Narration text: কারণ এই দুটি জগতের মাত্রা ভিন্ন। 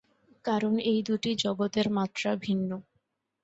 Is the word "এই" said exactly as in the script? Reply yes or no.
yes